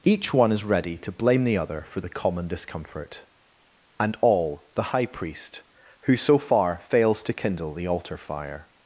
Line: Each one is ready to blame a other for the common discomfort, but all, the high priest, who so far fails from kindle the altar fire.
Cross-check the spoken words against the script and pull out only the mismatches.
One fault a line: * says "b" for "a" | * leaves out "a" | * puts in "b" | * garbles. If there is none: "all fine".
* says "the" for "a"
* says "and" for "but"
* says "to" for "from"